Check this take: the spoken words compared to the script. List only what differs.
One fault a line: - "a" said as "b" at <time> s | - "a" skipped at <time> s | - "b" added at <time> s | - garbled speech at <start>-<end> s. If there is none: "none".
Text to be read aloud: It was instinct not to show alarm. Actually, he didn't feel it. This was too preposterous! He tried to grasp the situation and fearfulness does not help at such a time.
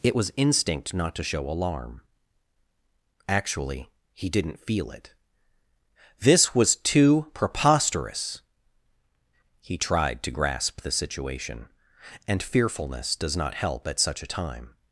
none